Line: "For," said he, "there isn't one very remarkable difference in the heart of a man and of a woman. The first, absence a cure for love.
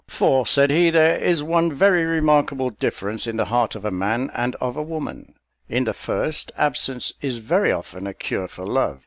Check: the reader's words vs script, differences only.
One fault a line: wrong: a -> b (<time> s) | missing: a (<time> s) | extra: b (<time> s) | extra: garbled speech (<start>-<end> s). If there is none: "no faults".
wrong: isn't -> is (1.2 s)
extra: In (5.7 s)
extra: is very often (7.2 s)